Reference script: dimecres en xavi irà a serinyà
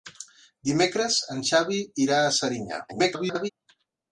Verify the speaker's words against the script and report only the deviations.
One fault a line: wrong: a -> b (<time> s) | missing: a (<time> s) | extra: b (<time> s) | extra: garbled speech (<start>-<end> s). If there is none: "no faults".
extra: garbled speech (2.9-3.5 s)